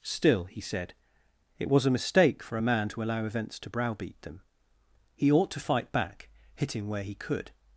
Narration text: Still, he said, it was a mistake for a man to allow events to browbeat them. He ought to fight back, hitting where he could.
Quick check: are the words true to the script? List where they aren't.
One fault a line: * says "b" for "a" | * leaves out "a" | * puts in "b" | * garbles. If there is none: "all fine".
all fine